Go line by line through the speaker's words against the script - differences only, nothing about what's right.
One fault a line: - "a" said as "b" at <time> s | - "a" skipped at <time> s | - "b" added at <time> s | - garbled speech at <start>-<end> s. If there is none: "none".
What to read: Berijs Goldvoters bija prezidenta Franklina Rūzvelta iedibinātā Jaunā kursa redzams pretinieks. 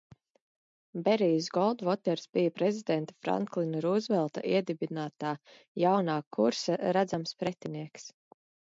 none